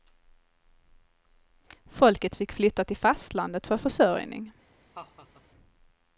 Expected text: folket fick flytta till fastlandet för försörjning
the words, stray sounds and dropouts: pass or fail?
fail